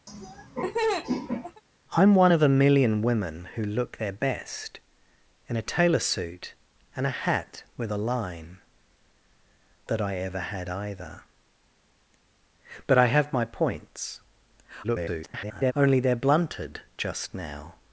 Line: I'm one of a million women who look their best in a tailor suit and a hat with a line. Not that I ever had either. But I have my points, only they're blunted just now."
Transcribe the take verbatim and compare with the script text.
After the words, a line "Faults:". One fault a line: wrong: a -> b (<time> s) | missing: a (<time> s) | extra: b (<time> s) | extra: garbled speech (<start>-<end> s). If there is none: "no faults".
I'm one of a million women who look their best in a tailor suit and a hat with a line. That I ever had either. But I have my points, [garbled] only they're blunted just now."
Faults:
missing: Not (8.6 s)
extra: garbled speech (14.8-15.7 s)